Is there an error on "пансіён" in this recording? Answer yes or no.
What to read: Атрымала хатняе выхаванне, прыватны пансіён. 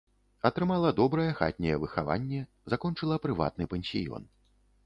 no